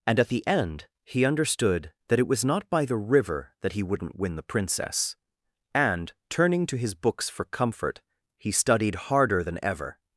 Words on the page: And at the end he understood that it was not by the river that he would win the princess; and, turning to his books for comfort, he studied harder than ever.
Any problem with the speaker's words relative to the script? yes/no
yes